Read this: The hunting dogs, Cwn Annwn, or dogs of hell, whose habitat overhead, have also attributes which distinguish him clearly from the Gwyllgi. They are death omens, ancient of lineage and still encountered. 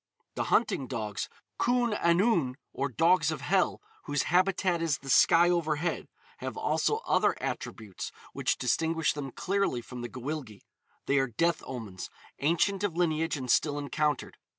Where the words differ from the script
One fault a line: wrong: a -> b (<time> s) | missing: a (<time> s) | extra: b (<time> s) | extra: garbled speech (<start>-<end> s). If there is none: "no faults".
extra: is the sky (4.8 s)
extra: other (7.0 s)
wrong: him -> them (9.1 s)